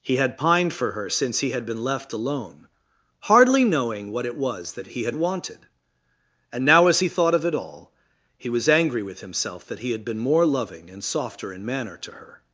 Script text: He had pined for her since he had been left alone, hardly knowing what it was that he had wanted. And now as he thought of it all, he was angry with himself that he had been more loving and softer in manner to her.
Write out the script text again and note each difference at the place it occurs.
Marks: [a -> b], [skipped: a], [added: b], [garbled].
He had pined for her since he had been left alone, hardly knowing what it was that he had wanted. And now as he thought of it all, he was angry with himself that he had been more loving and softer in manner to her.